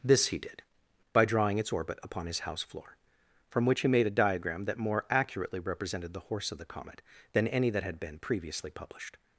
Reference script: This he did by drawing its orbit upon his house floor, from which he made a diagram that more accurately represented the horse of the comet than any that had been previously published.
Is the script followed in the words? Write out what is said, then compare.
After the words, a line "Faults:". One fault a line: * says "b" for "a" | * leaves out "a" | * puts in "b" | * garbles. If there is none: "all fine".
This he did by drawing its orbit upon his house floor, from which he made a diagram that more accurately represented the horse of the comet than any that had been previously published.
Faults:
all fine